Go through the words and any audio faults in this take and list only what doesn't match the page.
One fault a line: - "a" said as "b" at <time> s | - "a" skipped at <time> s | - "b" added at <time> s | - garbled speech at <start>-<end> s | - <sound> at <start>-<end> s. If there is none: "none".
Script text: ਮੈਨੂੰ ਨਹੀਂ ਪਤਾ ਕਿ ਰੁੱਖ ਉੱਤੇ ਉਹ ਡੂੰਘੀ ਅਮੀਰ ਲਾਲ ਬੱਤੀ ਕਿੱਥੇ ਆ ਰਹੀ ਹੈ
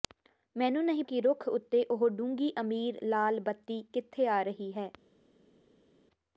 - "ਪਤਾ" skipped at 1.0 s